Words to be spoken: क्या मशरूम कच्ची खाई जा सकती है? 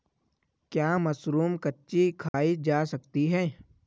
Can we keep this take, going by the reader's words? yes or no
yes